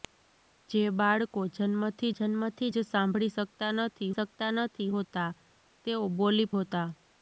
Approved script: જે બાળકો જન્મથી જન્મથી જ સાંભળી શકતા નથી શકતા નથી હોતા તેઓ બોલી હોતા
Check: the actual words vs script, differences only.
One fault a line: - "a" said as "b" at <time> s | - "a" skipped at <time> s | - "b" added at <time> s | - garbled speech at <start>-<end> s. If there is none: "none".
none